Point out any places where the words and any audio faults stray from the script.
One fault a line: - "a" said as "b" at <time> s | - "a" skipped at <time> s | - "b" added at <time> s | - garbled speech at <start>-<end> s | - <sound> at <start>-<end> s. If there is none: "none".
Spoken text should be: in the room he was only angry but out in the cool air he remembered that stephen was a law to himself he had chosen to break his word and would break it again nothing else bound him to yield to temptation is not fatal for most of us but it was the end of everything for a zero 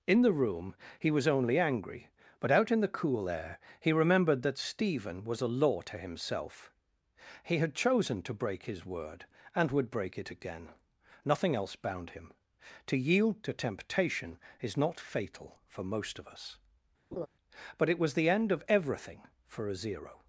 - laugh at 17.1-17.3 s